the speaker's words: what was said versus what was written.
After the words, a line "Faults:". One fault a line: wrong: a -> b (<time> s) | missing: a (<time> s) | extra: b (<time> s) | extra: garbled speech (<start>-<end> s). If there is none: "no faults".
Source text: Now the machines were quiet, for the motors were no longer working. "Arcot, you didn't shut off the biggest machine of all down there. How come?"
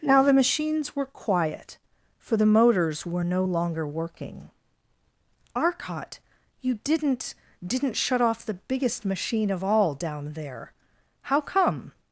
Now the machines were quiet, for the motors were no longer working. "Arcot, you didn't didn't shut off the biggest machine of all down there. How come?"
Faults:
extra: didn't (7.7 s)